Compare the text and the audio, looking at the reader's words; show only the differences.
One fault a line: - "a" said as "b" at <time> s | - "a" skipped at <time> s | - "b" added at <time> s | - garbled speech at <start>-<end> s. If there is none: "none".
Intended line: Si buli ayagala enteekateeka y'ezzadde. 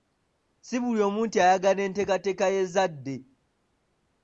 - "omu nti" added at 1.1 s